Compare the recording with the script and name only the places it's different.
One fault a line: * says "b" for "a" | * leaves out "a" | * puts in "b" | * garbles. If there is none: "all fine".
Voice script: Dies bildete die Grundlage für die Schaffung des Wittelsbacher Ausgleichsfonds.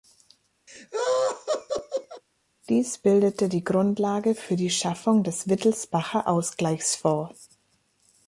all fine